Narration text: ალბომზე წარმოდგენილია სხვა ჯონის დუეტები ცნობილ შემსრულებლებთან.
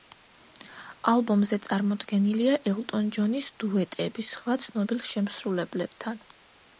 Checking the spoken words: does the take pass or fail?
fail